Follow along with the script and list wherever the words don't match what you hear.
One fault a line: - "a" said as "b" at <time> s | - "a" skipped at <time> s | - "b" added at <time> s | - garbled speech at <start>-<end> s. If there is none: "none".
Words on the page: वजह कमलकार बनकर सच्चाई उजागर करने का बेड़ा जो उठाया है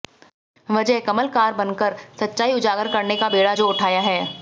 none